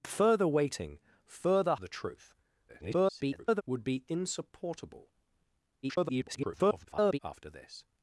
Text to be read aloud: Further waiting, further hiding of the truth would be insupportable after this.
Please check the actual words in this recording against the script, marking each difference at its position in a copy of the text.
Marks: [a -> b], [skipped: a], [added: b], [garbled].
Further waiting, further [skipped: hiding of] the truth [garbled] would be insupportable [garbled] after this.